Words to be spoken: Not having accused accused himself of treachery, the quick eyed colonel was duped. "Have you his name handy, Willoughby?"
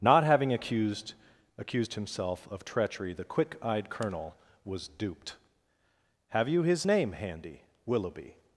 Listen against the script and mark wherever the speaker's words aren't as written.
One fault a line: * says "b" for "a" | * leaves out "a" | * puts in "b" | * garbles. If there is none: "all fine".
all fine